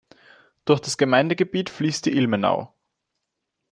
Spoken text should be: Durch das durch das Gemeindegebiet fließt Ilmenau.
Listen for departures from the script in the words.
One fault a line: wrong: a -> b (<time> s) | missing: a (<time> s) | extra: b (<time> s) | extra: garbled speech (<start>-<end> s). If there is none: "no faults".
missing: durch das (1.0 s)
extra: die (2.1 s)